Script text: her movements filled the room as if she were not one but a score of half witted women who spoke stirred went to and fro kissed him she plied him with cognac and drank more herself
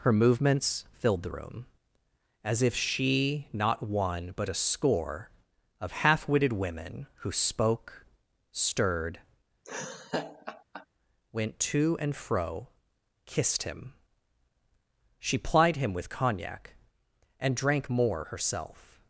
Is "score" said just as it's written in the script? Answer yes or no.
yes